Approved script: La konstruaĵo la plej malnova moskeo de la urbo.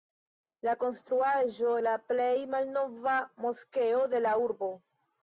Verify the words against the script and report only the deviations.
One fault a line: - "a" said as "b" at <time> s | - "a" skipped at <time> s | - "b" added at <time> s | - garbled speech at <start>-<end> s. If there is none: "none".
none